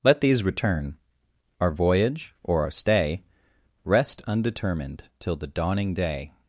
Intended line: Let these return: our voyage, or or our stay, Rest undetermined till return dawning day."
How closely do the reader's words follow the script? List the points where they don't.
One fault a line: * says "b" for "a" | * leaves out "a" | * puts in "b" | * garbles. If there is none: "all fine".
* leaves out "or"
* says "the" for "return"